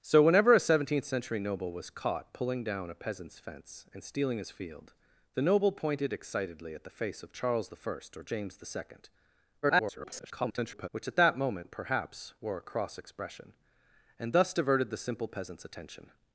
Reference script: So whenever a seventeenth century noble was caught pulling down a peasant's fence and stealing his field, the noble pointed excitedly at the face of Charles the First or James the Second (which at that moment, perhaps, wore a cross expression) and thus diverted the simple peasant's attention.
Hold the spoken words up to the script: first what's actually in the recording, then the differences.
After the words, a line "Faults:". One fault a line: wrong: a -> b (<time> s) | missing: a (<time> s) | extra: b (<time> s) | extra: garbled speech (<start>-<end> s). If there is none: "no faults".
So whenever a seventeenth century noble was caught pulling down a peasant's fence and stealing his field, the noble pointed excitedly at the face of Charles the First or James the Second [garbled] (which at that moment, perhaps, wore a cross expression) and thus diverted the simple peasant's attention.
Faults:
extra: garbled speech (9.6-10.9 s)